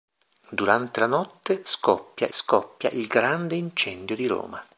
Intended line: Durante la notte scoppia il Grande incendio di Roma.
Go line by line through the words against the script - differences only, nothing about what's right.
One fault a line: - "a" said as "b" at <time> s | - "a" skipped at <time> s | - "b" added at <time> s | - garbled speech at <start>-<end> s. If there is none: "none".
- "scoppia" added at 2.3 s